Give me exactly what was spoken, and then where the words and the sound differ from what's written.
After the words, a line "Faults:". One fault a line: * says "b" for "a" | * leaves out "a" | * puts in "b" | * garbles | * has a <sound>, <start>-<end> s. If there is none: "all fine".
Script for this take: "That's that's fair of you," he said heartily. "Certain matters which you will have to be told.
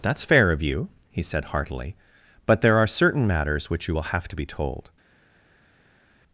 "That's fair of you," he said heartily. "But there are certain matters which you will have to be told.
Faults:
* leaves out "that's"
* puts in "But there are"